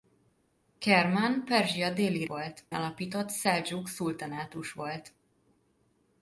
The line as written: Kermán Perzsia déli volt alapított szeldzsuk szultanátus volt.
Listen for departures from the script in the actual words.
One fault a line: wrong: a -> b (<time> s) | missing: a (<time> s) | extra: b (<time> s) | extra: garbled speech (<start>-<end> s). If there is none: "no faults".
no faults